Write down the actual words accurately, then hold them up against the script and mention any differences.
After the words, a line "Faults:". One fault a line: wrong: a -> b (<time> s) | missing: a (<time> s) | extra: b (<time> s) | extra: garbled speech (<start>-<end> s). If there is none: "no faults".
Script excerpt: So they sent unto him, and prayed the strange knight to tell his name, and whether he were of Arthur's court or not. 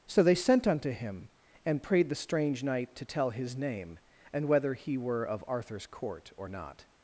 So they sent unto him, and prayed the strange knight to tell his name, and whether he were of Arthur's court or not.
Faults:
no faults